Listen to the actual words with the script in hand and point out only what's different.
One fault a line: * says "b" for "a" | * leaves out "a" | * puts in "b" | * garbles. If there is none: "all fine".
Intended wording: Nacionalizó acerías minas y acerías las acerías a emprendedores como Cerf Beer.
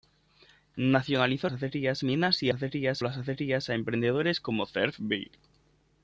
all fine